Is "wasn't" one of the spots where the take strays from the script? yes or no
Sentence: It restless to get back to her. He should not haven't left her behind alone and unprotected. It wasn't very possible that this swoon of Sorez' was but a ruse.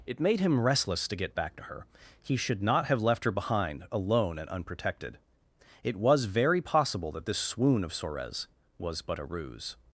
yes